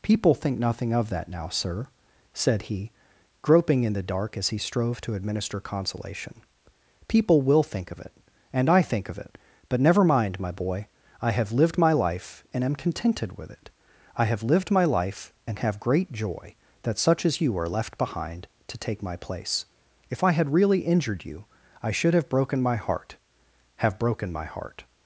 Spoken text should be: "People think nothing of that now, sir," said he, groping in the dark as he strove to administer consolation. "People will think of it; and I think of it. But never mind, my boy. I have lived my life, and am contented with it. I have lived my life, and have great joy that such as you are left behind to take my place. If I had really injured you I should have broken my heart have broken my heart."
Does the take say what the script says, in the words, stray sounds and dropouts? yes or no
yes